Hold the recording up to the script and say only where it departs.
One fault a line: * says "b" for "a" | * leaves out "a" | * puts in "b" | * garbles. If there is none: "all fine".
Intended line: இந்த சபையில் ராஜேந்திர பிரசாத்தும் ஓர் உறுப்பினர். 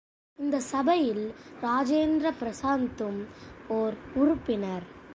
all fine